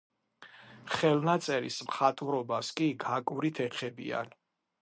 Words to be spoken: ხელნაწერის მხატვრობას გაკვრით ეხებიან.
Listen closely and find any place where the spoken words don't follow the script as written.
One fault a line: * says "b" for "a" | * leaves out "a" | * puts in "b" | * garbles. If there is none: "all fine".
* puts in "კი"